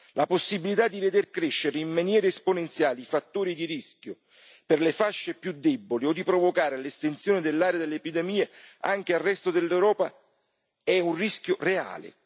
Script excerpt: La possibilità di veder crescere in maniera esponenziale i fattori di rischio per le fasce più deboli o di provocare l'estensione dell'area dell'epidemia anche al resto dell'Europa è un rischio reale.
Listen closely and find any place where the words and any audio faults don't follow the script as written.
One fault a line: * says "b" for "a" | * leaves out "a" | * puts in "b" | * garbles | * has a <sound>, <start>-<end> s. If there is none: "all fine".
all fine